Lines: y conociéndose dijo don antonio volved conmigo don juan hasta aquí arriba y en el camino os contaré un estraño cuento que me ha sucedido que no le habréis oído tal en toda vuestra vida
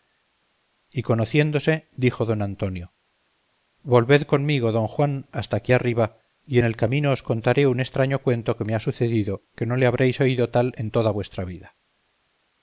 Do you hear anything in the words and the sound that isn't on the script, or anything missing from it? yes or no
no